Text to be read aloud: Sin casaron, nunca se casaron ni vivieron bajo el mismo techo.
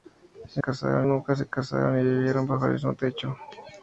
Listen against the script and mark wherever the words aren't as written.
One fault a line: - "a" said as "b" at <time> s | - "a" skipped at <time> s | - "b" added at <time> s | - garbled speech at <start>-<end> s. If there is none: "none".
none